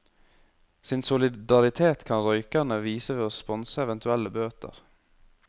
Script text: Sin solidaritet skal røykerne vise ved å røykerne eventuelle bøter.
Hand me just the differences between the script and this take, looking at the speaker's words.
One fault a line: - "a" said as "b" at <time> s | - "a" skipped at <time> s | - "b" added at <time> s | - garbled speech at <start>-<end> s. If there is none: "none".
- "skal" said as "kan" at 2.1 s
- "røykerne" said as "sponse" at 3.4 s